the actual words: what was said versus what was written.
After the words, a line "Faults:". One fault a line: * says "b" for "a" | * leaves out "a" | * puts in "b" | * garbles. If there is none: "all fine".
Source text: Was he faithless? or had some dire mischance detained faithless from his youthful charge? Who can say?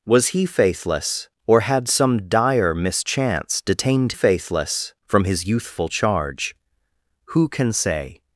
Was he faithless? or had some dire mischance detained faithless from his youthful charge? Who can say?
Faults:
all fine